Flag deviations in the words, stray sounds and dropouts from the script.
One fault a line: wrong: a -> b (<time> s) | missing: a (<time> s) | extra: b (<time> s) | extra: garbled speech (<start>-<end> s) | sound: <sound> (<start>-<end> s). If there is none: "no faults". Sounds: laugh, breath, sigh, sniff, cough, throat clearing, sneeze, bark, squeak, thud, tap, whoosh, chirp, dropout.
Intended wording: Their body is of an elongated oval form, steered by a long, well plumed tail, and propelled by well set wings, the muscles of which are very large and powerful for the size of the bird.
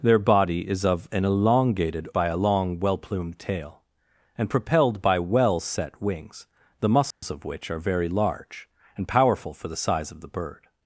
missing: oval form steered (2.1 s)
sound: dropout (7.1-7.2 s)